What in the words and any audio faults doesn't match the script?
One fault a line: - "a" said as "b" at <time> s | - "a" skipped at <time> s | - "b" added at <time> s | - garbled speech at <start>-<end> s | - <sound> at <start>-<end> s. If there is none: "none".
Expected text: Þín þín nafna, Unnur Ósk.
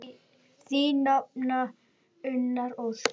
- "þín" skipped at 1.0 s